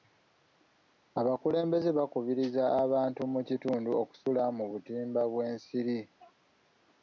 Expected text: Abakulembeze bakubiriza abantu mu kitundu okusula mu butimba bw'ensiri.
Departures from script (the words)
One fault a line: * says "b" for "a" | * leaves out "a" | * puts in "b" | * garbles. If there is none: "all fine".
all fine